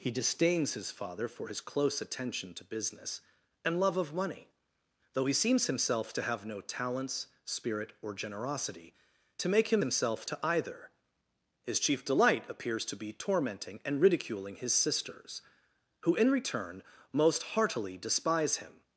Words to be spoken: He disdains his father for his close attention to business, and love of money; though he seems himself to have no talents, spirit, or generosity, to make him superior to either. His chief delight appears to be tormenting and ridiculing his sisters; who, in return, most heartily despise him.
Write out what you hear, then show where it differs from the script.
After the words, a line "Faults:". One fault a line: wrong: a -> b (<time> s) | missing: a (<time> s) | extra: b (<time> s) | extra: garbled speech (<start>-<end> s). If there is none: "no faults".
He disdains his father for his close attention to business, and love of money; though he seems himself to have no talents, spirit, or generosity, to make him himself to either. His chief delight appears to be tormenting and ridiculing his sisters; who, in return, most heartily despise him.
Faults:
wrong: superior -> himself (9.8 s)